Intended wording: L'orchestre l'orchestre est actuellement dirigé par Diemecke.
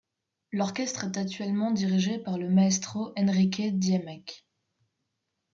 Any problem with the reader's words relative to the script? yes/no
yes